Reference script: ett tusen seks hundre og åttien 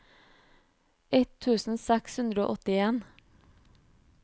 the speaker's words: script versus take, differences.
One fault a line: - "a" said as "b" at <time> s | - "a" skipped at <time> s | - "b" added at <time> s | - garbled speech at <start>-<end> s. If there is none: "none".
none